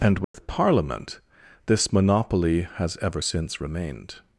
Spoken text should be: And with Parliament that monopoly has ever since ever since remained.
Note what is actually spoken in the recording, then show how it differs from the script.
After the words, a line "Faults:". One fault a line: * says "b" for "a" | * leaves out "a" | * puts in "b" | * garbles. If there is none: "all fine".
And with Parliament this monopoly has ever since remained.
Faults:
* says "this" for "that"
* leaves out "ever since"